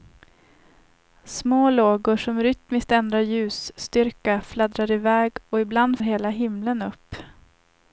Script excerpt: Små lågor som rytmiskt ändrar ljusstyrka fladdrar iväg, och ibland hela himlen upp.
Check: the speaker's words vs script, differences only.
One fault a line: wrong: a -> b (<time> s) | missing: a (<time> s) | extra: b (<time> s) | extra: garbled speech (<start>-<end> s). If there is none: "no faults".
no faults